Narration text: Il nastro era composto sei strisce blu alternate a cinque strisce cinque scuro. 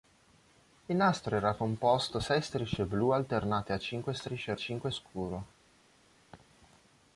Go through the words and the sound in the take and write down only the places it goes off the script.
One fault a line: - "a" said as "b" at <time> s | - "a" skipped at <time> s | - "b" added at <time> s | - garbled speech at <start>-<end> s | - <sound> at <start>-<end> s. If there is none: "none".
- laugh at 6.3-6.5 s